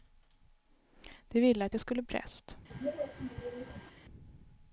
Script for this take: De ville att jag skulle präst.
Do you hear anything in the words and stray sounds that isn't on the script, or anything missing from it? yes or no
yes